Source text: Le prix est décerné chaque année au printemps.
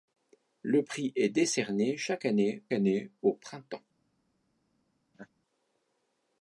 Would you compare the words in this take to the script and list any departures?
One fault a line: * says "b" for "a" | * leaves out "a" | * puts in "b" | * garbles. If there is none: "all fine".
* puts in "année"